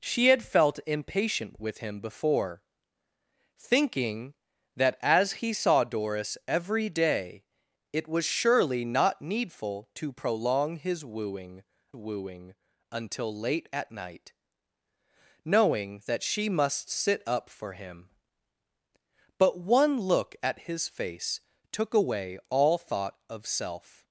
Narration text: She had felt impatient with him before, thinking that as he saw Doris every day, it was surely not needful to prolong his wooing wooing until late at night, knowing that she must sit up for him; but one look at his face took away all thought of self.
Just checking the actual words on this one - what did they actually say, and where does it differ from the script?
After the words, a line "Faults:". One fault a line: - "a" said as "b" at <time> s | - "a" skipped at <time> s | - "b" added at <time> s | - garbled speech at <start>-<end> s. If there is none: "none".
She had felt impatient with him before, thinking that as he saw Doris every day, it was surely not needful to prolong his wooing wooing until late at night, knowing that she must sit up for him; but one look at his face took away all thought of self.
Faults:
none